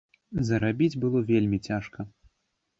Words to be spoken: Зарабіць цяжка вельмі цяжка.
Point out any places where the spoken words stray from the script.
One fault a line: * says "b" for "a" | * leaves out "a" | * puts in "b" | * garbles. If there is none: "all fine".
* says "было" for "цяжка"